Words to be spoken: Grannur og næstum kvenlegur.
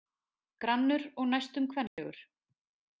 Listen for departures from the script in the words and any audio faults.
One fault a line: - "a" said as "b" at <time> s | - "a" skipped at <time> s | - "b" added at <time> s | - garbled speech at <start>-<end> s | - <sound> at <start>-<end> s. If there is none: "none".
- dropout at 1.9-2.0 s